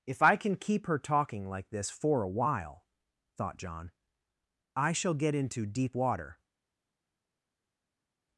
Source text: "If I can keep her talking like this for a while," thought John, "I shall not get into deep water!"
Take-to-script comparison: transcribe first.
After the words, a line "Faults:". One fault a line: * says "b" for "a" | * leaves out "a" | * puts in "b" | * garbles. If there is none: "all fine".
"If I can keep her talking like this for a while," thought John, "I shall get into deep water!"
Faults:
* leaves out "not"